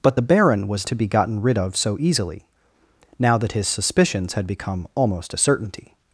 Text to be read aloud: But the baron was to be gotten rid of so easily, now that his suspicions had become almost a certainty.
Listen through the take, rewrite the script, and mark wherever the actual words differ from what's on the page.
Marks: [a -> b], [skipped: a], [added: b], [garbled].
But the baron was to be gotten rid of so easily, now that his suspicions had become almost a certainty.